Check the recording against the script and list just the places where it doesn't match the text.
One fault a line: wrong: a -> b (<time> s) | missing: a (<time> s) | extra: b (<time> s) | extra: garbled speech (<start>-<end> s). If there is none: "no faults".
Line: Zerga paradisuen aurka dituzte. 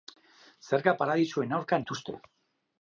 no faults